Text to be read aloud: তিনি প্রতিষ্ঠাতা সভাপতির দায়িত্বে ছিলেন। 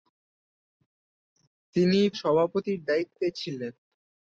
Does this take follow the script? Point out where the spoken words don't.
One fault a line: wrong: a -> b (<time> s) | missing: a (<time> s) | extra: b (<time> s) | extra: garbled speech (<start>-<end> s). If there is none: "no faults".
missing: প্রতিষ্ঠাতা (2.0 s)